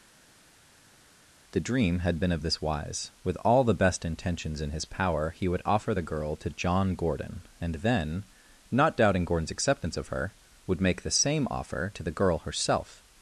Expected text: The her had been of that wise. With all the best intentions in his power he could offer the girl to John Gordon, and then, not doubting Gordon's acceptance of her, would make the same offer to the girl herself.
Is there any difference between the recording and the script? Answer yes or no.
yes